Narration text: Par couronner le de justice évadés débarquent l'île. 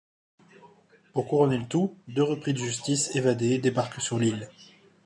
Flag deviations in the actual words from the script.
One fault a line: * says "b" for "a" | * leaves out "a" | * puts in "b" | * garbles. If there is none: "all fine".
* says "Pour" for "Par"
* puts in "tout deux repris"
* puts in "sur"